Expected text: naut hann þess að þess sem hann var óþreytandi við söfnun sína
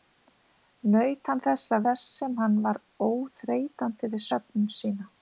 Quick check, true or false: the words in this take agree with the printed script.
true